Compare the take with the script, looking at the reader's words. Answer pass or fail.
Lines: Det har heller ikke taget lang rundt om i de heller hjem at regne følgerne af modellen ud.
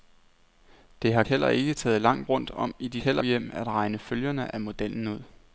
pass